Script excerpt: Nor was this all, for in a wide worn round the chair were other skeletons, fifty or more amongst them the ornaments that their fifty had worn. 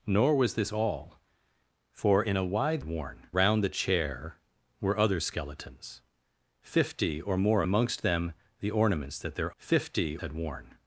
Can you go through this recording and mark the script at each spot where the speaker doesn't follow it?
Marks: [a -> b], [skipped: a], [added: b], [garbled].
Nor was this all, for in a wide worn round the chair were other skeletons, fifty or more amongst them the ornaments that their fifty had worn.